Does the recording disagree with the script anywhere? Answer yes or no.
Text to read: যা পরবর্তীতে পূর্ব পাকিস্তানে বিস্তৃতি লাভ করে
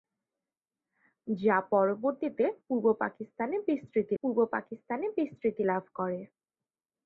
yes